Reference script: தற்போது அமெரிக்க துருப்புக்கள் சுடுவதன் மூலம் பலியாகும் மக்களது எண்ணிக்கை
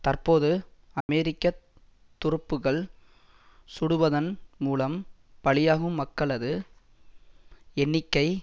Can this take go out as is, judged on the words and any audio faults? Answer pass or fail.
fail